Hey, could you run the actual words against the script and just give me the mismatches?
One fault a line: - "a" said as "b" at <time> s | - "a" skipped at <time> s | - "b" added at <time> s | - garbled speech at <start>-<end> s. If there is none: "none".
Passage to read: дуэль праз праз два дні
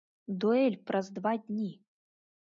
- "праз" skipped at 1.1 s